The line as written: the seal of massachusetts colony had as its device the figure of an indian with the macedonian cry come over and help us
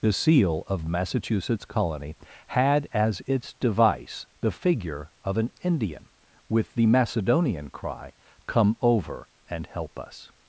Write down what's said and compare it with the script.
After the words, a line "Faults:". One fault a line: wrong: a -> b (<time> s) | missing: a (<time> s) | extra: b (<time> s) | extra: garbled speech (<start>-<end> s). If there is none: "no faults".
the seal of massachusetts colony had as its device the figure of an indian with the macedonian cry come over and help us
Faults:
no faults